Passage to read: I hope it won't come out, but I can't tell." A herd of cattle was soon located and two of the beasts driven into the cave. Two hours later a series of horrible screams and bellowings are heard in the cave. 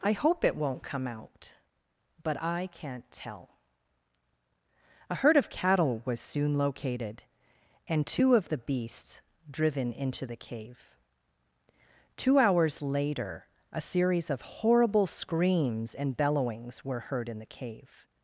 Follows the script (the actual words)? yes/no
no